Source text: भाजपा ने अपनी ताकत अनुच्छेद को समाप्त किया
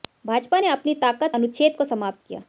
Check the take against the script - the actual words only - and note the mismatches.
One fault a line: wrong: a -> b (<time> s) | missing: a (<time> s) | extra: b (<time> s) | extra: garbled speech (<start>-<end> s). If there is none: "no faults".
no faults